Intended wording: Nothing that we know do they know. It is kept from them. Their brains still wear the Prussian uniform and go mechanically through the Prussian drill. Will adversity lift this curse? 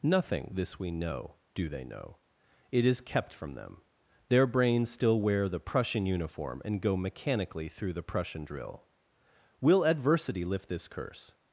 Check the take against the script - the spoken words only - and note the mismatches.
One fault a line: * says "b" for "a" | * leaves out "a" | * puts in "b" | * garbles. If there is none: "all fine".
* says "this" for "that"